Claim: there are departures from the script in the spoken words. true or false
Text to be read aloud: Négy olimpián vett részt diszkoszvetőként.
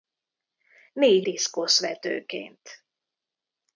true